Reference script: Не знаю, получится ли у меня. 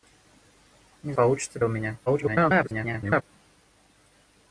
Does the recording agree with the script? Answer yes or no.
no